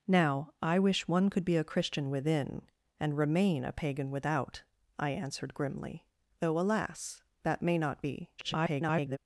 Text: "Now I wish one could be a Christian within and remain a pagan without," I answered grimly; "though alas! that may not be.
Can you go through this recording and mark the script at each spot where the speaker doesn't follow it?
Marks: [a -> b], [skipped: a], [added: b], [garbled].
"Now I wish one could be a Christian within and remain a pagan without," I answered grimly; "though alas! that may not be. [garbled]